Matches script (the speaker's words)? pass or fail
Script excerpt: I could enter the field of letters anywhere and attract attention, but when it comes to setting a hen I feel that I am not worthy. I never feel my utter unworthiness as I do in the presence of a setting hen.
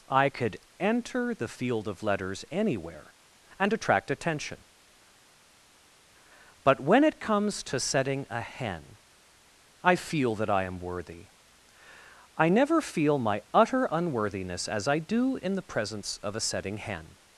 fail